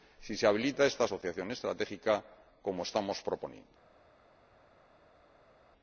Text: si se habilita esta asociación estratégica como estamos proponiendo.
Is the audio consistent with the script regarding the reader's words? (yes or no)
yes